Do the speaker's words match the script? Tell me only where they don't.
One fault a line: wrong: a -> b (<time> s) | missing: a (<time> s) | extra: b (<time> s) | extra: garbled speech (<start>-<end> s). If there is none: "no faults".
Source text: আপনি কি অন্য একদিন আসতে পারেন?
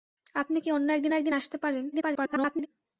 extra: একদিন (1.2 s)
extra: garbled speech (1.9-2.7 s)